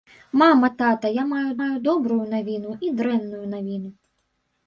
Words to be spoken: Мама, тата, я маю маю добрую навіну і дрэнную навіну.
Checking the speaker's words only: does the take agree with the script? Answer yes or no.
yes